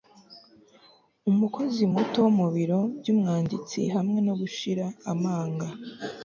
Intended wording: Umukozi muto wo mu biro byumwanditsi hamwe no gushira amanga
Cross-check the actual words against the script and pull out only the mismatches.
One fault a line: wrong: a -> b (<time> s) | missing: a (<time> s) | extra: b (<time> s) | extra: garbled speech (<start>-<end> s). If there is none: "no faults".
no faults